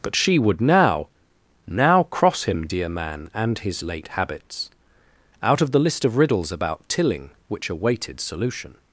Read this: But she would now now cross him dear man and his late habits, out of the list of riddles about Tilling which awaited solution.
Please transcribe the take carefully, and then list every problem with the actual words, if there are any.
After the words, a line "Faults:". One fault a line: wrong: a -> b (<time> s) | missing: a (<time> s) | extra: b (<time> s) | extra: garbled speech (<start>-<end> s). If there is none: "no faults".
But she would now now cross him dear man and his late habits, out of the list of riddles about Tilling which awaited solution.
Faults:
no faults